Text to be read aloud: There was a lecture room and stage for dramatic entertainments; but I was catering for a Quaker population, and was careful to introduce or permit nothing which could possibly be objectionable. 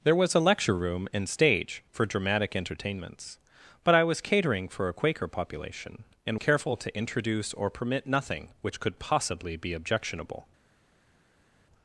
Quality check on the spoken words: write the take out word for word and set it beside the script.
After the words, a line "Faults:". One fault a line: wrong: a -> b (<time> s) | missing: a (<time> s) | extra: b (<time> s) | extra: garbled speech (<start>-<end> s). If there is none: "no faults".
There was a lecture room and stage for dramatic entertainments; but I was catering for a Quaker population, and careful to introduce or permit nothing which could possibly be objectionable.
Faults:
missing: was (6.4 s)